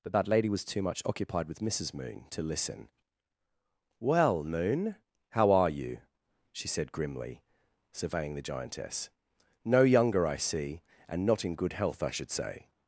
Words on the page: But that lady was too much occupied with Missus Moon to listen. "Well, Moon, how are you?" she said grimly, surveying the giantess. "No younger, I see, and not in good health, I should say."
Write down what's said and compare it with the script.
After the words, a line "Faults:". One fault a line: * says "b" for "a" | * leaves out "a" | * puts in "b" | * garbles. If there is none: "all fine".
But that lady was too much occupied with Missus Moon to listen. "Well, Moon, how are you?" she said grimly, surveying the giantess. "No younger, I see, and not in good health, I should say."
Faults:
all fine